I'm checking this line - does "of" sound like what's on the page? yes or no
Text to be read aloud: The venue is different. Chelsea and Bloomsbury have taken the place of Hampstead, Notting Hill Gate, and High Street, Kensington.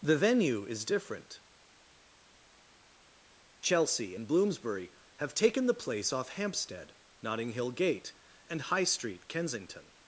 no